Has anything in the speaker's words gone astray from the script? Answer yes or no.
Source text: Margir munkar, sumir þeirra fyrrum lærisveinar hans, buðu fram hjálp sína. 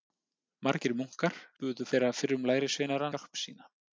yes